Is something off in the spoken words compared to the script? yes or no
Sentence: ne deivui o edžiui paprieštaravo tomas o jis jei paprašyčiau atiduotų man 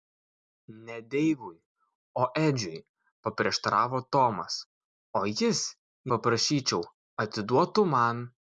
yes